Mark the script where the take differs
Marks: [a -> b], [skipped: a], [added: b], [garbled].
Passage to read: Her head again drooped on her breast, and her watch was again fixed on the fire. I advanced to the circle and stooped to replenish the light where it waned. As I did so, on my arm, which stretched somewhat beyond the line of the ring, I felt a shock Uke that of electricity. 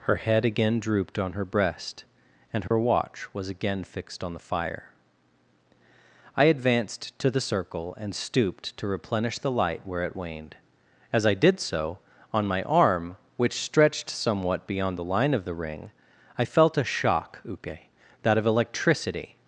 Her head again drooped on her breast, and her watch was again fixed on the fire. I advanced to the circle and stooped to replenish the light where it waned. As I did so, on my arm, which stretched somewhat beyond the line of the ring, I felt a shock Uke that of electricity.